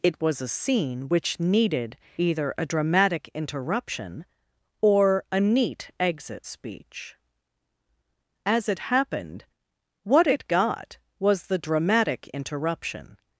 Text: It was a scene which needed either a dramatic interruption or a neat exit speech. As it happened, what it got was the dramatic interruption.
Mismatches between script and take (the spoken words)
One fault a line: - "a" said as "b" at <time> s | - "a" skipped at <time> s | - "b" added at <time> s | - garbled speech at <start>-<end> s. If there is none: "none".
none